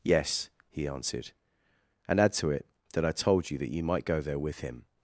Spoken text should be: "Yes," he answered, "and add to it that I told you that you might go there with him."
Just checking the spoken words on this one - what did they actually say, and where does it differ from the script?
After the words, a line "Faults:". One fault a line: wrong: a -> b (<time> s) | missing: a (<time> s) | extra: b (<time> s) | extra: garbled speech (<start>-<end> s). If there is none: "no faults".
"Yes," he answered, "and add to it that I told you that you might go there with him."
Faults:
no faults